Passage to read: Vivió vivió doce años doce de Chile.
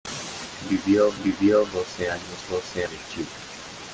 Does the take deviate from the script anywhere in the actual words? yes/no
no